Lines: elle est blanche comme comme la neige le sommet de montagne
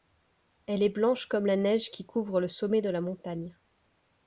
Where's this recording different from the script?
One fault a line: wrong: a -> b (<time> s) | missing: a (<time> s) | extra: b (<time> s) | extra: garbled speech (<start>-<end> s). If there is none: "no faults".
missing: comme (1.4 s)
extra: qui couvre (1.9 s)
extra: la (2.9 s)